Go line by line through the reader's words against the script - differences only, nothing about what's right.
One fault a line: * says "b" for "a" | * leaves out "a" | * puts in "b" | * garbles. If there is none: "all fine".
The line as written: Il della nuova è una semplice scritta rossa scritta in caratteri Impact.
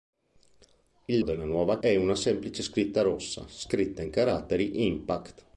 all fine